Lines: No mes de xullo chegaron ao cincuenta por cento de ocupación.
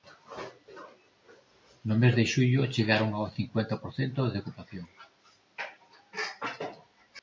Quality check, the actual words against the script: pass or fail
pass